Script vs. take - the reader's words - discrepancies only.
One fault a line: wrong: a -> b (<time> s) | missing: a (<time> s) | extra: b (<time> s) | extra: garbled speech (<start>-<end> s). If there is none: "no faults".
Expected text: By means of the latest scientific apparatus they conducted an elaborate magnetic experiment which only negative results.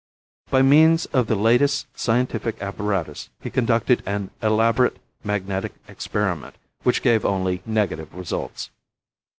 wrong: they -> he (3.4 s)
extra: gave (7.0 s)